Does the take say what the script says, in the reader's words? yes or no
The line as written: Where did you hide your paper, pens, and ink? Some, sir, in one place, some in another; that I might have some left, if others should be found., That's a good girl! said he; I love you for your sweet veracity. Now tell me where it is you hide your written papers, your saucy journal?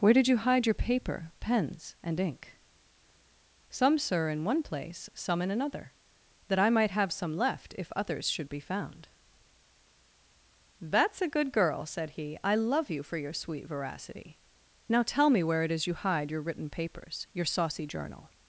yes